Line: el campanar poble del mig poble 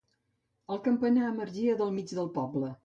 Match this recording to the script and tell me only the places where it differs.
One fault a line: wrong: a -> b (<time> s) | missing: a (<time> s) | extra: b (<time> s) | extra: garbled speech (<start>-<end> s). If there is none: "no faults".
wrong: poble -> emergia (1.3 s)
extra: del (2.2 s)